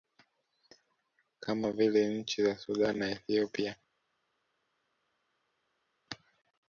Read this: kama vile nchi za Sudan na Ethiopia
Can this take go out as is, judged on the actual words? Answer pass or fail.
pass